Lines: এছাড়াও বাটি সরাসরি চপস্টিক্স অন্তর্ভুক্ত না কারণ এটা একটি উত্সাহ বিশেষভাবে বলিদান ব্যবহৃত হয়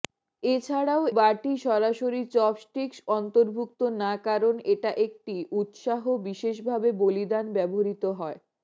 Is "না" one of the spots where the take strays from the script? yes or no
no